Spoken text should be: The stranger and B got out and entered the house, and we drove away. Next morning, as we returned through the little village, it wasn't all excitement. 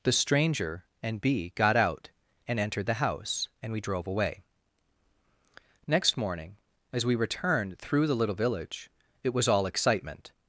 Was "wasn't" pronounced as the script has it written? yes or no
no